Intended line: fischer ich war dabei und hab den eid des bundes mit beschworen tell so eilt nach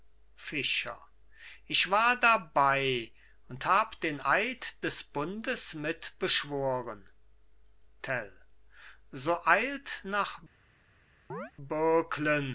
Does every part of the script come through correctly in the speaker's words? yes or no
yes